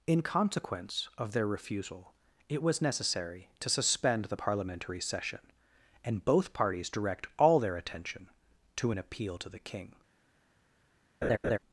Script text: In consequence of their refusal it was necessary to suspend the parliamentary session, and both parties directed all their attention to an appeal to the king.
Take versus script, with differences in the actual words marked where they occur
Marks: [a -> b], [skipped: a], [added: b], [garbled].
In consequence of their refusal it was necessary to suspend the parliamentary session, and both parties [directed -> direct] all their attention to an appeal to the king.